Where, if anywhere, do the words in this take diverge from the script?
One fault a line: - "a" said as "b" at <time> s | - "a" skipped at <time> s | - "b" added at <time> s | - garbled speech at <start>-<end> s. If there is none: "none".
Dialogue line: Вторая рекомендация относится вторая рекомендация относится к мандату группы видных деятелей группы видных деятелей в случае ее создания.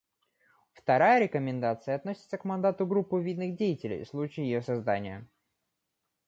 - "вторая рекомендация относится" skipped at 2.4 s
- "группы видных деятелей" skipped at 4.0 s